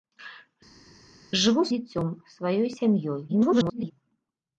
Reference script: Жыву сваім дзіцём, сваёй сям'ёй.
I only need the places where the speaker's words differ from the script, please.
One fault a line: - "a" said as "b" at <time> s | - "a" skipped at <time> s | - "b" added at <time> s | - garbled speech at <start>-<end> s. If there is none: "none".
- "сваім" skipped at 1.6 s
- garbled speech at 3.3-3.9 s